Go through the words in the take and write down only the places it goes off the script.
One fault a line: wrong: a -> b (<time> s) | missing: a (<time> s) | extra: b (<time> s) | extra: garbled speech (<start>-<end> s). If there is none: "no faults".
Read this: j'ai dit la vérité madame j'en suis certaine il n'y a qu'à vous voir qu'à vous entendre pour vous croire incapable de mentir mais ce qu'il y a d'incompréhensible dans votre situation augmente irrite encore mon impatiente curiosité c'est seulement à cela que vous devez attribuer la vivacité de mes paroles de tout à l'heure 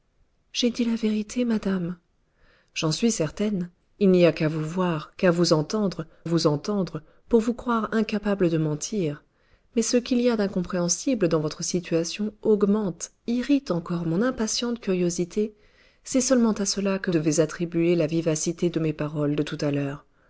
extra: vous entendre (6.2 s)
missing: vous (17.1 s)